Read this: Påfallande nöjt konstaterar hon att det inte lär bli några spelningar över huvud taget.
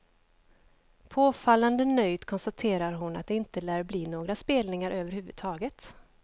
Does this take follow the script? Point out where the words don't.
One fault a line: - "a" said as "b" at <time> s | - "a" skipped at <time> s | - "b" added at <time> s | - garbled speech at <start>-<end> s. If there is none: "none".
none